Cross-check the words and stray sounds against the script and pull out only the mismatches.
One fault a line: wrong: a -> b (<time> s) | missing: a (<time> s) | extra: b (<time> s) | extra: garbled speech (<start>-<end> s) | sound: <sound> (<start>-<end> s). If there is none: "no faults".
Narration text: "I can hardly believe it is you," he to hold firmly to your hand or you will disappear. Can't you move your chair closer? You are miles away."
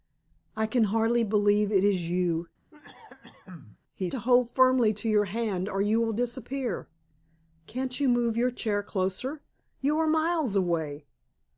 sound: cough (2.7-3.8 s)